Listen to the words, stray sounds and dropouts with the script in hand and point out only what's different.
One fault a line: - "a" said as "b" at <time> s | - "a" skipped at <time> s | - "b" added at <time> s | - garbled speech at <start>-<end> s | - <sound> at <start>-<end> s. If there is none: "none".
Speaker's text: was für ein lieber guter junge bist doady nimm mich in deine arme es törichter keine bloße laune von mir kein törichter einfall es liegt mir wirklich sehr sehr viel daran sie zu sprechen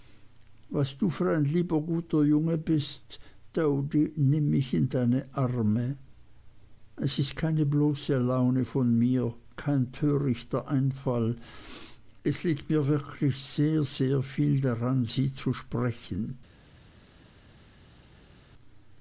- "du" added at 1.0 s
- "törichter" said as "ist" at 7.2 s